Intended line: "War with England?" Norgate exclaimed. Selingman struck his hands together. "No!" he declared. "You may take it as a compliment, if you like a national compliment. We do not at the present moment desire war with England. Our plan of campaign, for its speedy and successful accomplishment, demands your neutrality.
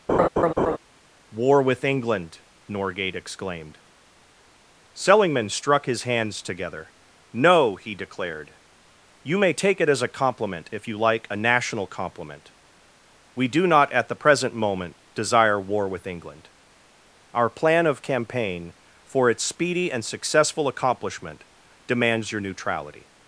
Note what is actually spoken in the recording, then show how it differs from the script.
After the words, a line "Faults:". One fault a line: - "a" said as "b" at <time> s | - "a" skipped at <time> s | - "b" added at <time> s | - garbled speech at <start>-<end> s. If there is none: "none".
"War with England?" Norgate exclaimed. Selingman struck his hands together. "No!" he declared. "You may take it as a compliment, if you like a national compliment. We do not at the present moment desire war with England. Our plan of campaign, for its speedy and successful accomplishment, demands your neutrality.
Faults:
none